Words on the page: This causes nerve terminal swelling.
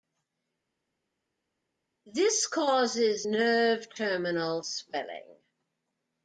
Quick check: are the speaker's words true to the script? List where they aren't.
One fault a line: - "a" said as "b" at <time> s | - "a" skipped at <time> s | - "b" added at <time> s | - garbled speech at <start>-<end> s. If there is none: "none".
none